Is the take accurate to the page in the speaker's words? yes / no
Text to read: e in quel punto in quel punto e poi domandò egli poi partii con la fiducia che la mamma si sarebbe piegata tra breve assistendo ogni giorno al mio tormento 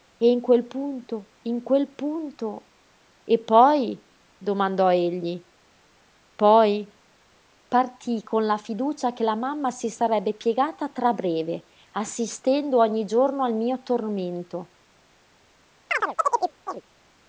yes